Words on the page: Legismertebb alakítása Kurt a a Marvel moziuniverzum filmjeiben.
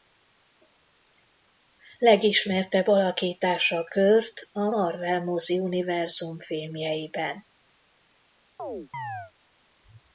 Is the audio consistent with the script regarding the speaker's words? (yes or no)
no